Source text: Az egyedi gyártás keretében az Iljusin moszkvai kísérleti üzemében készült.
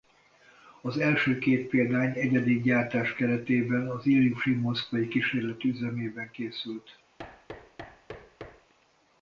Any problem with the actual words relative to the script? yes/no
yes